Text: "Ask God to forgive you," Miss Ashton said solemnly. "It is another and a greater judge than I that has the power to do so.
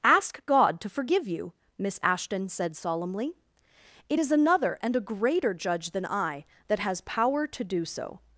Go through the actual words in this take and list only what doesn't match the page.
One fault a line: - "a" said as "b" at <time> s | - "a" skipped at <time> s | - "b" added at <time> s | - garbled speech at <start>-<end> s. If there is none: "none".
- "the" skipped at 7.0 s